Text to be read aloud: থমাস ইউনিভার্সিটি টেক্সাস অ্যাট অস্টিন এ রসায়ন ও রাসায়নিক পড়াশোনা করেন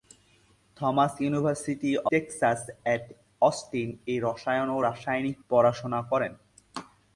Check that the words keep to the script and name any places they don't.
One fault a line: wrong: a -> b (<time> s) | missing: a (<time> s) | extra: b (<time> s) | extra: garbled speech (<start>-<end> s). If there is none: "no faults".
no faults